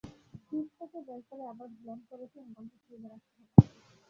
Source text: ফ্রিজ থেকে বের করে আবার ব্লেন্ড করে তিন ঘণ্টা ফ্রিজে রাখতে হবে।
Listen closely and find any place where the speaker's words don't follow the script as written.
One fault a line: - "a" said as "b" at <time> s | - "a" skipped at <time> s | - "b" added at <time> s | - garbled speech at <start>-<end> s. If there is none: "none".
none